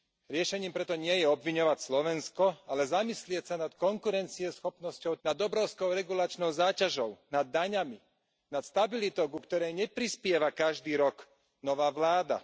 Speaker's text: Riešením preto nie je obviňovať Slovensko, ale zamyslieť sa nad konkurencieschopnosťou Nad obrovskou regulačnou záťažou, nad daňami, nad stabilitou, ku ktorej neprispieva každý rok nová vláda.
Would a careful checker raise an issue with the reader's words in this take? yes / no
no